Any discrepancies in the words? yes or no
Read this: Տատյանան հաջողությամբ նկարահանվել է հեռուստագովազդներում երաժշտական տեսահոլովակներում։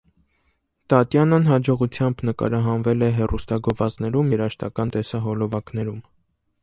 no